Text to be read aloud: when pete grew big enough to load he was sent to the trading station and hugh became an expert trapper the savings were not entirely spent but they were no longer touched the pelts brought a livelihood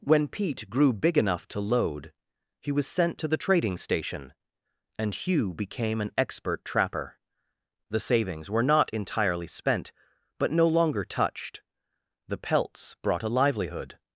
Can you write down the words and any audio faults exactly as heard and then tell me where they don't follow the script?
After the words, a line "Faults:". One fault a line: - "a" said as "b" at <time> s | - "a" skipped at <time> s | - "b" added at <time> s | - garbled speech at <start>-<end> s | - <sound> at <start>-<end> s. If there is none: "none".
when pete grew big enough to load he was sent to the trading station and hugh became an expert trapper the savings were not entirely spent but no longer touched the pelts brought a livelihood
Faults:
- "they were" skipped at 10.5 s